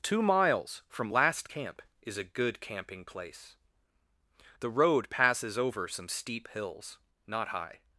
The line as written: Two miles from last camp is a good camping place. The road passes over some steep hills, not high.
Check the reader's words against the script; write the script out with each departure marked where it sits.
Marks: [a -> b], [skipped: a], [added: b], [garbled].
Two miles from last camp is a good camping place. The road passes over some steep hills, not high.